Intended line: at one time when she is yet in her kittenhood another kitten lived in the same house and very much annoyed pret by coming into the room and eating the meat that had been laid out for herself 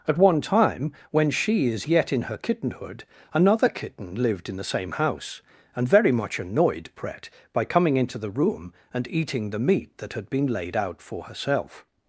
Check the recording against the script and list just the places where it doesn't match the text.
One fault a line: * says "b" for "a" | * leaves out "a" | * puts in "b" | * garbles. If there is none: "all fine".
all fine